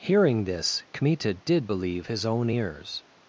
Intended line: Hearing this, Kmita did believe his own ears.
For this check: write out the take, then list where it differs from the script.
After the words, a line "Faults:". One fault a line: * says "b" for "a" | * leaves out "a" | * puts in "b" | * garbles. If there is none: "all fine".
Hearing this, Kmita did believe his own ears.
Faults:
all fine